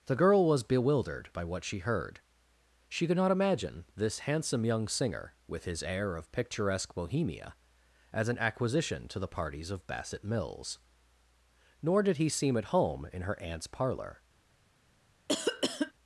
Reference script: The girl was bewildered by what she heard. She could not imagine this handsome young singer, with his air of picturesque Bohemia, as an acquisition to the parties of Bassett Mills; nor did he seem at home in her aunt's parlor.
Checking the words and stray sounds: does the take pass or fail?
fail